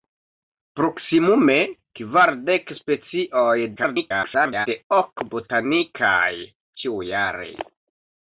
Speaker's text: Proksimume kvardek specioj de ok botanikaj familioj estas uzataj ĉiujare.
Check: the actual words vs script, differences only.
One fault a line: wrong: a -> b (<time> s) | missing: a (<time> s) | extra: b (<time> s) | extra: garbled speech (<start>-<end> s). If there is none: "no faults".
extra: garbled speech (3.8-4.7 s)
missing: familioj estas uzataj (6.3 s)